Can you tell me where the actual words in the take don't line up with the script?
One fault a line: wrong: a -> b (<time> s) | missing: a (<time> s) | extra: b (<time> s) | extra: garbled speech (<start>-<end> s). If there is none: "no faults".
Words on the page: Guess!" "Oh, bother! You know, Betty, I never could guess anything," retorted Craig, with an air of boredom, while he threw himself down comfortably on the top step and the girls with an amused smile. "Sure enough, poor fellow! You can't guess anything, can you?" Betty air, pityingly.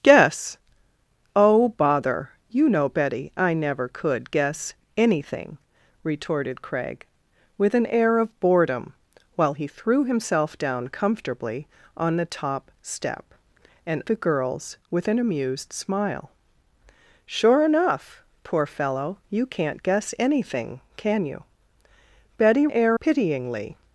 no faults